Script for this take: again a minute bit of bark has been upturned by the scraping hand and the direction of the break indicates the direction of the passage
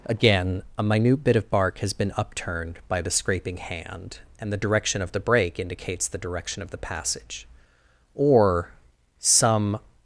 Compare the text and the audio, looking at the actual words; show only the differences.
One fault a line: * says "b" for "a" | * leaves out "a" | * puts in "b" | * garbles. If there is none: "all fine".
* puts in "or some"